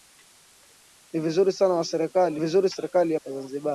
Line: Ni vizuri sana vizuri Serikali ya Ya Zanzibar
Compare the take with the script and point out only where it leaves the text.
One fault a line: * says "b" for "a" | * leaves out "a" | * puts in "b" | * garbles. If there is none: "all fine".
all fine